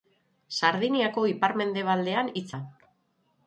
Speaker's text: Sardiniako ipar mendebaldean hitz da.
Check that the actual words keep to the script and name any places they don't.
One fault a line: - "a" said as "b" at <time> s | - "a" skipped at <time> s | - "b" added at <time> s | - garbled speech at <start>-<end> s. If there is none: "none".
none